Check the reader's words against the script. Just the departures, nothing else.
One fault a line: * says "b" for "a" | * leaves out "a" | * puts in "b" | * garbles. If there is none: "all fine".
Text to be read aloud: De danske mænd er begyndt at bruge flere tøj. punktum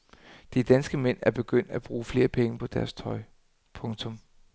* puts in "penge på deres"